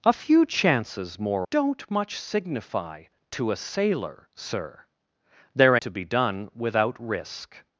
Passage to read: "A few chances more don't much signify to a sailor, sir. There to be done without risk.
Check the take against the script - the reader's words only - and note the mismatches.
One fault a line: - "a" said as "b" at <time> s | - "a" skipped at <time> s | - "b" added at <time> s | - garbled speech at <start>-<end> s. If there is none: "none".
none